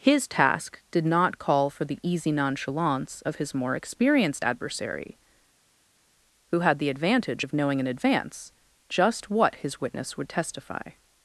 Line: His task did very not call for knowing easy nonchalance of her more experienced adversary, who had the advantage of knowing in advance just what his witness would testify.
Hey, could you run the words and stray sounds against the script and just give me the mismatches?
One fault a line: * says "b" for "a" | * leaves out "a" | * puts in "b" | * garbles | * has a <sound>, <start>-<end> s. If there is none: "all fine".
* leaves out "very"
* says "the" for "knowing"
* says "his" for "her"